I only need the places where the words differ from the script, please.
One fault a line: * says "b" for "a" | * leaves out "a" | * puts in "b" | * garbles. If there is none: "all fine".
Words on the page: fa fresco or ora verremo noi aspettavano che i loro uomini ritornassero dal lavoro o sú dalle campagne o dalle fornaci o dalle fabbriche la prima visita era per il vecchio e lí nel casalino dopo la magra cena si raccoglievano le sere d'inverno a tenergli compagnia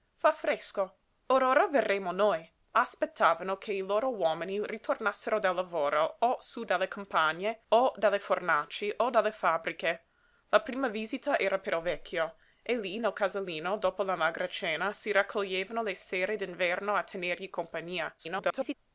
* garbles